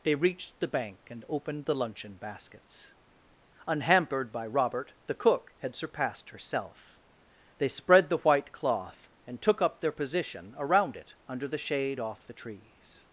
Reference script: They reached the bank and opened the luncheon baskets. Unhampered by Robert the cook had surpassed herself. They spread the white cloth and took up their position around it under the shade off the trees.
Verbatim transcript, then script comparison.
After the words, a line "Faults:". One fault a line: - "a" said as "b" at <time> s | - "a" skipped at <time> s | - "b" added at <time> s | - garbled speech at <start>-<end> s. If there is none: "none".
They reached the bank and opened the luncheon baskets. Unhampered by Robert the cook had surpassed herself. They spread the white cloth and took up their position around it under the shade off the trees.
Faults:
none